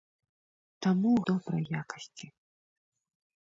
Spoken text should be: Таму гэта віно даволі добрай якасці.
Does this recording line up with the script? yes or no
no